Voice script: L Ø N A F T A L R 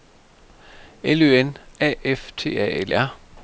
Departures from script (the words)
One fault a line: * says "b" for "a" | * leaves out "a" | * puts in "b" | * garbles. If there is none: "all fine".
all fine